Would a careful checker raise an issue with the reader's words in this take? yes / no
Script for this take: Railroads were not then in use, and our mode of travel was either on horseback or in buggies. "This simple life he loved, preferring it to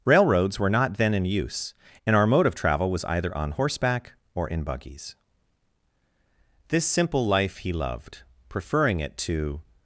no